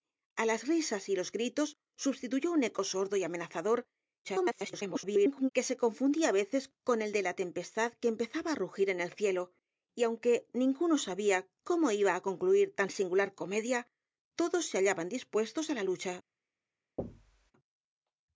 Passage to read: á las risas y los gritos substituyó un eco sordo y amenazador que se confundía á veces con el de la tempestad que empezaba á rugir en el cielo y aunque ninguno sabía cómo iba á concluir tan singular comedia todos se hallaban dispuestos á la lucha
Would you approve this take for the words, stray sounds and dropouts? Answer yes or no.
no